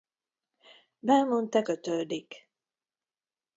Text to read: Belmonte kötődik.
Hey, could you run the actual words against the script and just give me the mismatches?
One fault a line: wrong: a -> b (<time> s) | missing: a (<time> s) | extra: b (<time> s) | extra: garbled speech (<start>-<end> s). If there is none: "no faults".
no faults